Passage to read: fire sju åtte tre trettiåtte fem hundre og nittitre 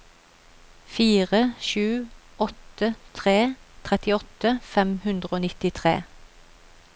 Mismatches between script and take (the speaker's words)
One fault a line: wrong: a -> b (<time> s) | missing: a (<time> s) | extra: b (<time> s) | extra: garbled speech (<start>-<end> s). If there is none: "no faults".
no faults